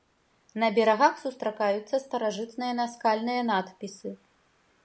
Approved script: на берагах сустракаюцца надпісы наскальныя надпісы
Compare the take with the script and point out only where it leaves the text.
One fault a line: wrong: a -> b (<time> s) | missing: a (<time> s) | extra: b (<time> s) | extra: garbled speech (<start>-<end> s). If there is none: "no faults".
wrong: надпісы -> старажытныя (2.0 s)